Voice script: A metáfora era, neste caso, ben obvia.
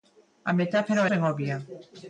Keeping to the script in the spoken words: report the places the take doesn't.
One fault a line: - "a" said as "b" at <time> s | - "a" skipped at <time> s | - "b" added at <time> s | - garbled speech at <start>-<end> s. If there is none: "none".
- "era neste caso" skipped at 1.0 s